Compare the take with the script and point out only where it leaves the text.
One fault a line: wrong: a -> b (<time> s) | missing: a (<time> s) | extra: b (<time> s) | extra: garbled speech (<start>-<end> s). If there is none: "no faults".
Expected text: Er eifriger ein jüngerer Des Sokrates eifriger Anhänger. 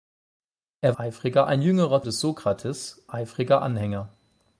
no faults